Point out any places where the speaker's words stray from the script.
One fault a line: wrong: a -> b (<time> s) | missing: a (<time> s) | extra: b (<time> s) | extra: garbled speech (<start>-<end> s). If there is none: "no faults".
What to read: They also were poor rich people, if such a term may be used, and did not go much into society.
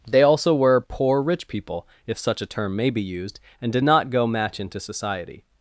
wrong: much -> match (4.3 s)